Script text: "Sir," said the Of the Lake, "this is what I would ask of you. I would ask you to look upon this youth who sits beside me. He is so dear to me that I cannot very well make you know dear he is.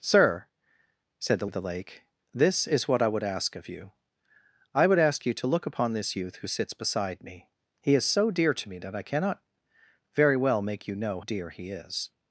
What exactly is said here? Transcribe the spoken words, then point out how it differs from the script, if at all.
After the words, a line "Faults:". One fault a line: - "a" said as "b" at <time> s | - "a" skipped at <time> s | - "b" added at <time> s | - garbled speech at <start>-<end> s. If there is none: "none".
"Sir," said the Of the Lake, "this is what I would ask of you. I would ask you to look upon this youth who sits beside me. He is so dear to me that I cannot very well make you know dear he is.
Faults:
none